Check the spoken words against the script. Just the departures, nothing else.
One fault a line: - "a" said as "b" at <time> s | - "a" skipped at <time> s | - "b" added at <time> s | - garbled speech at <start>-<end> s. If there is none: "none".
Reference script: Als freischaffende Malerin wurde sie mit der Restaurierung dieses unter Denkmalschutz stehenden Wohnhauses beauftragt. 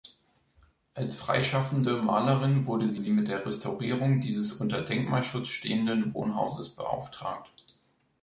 - "sie" added at 3.0 s